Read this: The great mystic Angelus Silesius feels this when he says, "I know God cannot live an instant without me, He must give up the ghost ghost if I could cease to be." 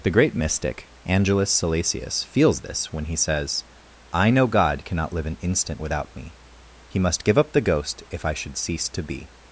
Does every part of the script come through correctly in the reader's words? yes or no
no